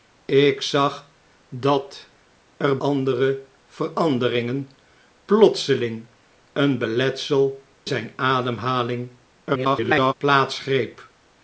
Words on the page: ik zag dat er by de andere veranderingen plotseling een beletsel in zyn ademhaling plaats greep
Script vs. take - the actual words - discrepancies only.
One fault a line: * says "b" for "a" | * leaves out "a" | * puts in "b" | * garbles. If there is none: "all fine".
* leaves out "by de"
* leaves out "in"
* garbles